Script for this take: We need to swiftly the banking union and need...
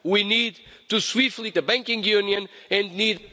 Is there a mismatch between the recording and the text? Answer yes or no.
no